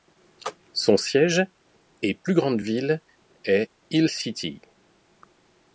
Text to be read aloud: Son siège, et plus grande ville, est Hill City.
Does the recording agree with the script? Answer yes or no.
yes